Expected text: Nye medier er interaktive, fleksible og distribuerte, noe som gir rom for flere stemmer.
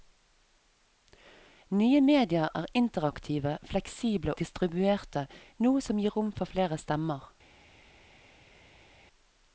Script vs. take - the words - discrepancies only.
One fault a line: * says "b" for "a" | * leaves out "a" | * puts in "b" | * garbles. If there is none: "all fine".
* leaves out "og"